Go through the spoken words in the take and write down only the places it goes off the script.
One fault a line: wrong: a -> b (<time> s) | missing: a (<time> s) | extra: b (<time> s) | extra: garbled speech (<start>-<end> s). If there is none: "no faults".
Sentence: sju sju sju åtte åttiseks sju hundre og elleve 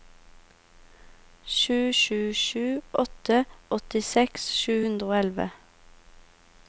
no faults